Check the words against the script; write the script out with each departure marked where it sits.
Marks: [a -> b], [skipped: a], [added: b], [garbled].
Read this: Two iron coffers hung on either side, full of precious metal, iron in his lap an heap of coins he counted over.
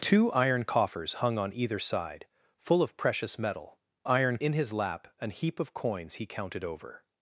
Two iron coffers hung on either side, full of precious metal, iron in his lap an heap of coins he counted over.